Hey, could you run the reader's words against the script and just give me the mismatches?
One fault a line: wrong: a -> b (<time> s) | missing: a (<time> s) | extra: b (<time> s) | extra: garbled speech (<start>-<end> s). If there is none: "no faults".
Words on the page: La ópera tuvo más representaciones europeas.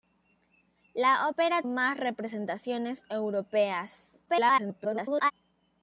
missing: tuvo (1.6 s)
extra: garbled speech (4.3-5.3 s)